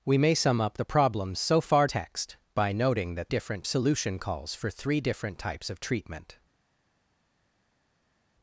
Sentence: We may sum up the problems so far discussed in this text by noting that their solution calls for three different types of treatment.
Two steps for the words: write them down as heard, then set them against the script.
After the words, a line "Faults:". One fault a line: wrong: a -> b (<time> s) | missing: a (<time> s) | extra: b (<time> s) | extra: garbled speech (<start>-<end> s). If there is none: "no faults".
We may sum up the problems so far text by noting that different solution calls for three different types of treatment.
Faults:
missing: discussed in this (1.9 s)
wrong: their -> different (3.3 s)